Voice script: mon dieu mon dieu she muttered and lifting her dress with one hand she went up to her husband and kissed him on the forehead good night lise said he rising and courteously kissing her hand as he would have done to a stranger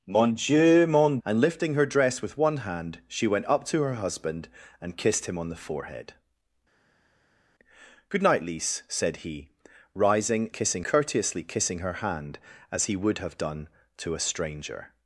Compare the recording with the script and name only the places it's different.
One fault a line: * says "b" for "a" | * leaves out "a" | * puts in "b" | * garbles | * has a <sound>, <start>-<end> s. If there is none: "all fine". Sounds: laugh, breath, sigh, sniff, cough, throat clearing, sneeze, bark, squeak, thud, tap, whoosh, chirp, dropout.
* leaves out "dieu she muttered"
* says "kissing" for "and"